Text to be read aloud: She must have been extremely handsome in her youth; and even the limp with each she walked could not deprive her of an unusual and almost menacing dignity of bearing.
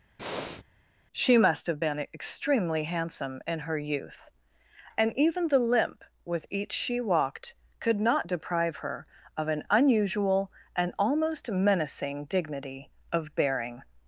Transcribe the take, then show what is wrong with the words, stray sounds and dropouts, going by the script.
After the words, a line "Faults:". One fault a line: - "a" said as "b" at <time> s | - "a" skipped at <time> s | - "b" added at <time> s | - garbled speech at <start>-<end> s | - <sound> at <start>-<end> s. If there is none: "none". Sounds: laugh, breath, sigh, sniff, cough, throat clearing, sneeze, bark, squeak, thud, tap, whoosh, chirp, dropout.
She must have been extremely handsome in her youth; and even the limp with each she walked could not deprive her of an unusual and almost menacing dignity of bearing.
Faults:
- breath at 0.2-0.6 s